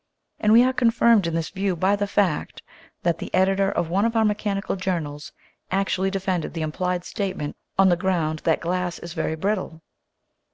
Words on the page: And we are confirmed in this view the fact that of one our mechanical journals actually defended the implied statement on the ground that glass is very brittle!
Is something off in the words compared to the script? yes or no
yes